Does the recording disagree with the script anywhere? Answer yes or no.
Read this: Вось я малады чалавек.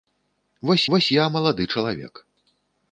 yes